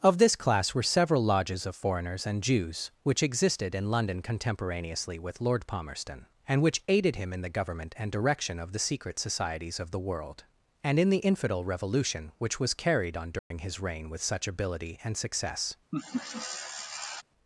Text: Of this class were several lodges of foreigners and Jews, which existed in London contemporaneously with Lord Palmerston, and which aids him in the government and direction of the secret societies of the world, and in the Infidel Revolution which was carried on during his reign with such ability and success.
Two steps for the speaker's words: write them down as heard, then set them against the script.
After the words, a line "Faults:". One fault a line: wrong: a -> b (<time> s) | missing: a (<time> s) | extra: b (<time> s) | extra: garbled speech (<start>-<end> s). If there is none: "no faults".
Of this class were several lodges of foreigners and Jews, which existed in London contemporaneously with Lord Palmerston, and which aided him in the government and direction of the secret societies of the world, and in the Infidel Revolution which was carried on during his reign with such ability and success.
Faults:
wrong: aids -> aided (6.9 s)